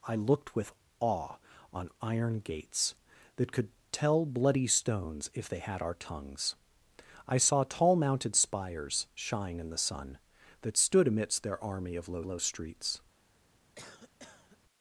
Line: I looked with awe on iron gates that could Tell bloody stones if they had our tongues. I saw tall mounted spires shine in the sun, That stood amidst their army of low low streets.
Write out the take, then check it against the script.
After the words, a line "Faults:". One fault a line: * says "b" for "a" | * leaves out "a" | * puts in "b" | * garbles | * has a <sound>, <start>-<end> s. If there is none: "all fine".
I looked with awe on iron gates that could Tell bloody stones if they had our tongues. I saw tall mounted spires shine in the sun, That stood amidst their army of low low streets.
Faults:
* has a cough, 13.8-14.6 s